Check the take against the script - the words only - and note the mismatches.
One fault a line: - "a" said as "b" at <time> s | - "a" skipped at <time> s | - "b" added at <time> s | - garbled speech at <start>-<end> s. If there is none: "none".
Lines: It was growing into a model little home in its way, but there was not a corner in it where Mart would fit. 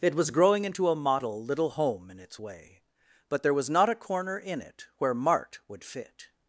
none